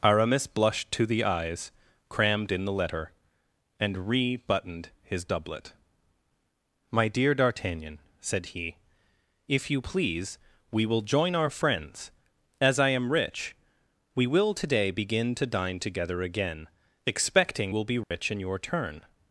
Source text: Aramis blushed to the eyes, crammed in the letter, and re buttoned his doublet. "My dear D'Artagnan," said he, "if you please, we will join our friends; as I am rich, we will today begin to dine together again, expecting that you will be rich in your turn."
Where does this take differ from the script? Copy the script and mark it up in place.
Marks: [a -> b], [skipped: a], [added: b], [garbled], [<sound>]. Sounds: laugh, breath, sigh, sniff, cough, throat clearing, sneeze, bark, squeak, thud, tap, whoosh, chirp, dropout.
Aramis blushed to the eyes, crammed in the letter, and re buttoned his doublet. "My dear D'Artagnan," said he, "if you please, we will join our friends; as I am rich, we will today begin to dine together again, expecting [skipped: that you] will be rich [dropout] in your turn."